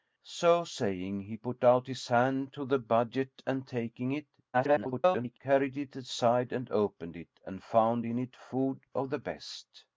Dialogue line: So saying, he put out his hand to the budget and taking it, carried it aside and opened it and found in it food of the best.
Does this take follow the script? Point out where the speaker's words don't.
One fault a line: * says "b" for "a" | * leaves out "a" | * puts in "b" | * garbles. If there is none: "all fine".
* garbles